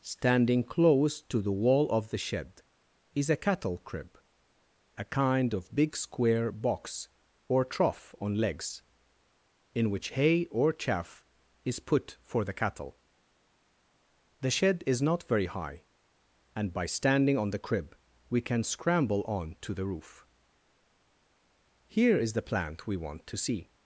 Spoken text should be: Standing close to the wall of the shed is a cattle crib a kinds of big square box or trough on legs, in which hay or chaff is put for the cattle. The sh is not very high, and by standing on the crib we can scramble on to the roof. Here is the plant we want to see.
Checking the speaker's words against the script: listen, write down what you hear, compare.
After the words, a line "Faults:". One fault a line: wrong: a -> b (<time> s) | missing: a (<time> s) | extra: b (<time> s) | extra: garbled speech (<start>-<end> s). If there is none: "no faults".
Standing close to the wall of the shed is a cattle crib a kind of big square box or trough on legs, in which hay or chaff is put for the cattle. The shed is not very high, and by standing on the crib we can scramble on to the roof. Here is the plant we want to see.
Faults:
wrong: kinds -> kind (5.0 s)
wrong: sh -> shed (14.5 s)